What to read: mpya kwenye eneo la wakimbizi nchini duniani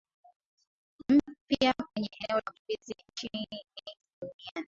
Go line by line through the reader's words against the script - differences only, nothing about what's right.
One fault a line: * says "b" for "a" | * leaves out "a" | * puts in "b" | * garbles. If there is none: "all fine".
* leaves out "la"